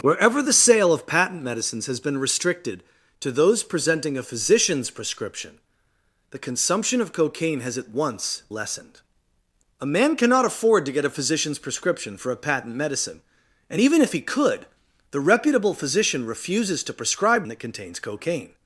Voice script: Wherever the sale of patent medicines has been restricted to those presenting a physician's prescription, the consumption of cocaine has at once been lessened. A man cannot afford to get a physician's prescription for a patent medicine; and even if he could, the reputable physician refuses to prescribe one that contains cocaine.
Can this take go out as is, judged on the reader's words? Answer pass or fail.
fail